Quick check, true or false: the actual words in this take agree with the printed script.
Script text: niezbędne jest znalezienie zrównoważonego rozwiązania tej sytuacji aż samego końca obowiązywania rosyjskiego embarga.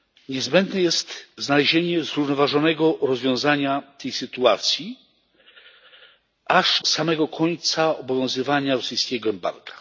true